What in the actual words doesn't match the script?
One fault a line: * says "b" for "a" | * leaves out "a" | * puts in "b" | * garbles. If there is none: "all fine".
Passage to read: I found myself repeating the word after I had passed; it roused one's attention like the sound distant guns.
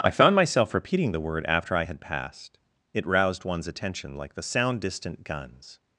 all fine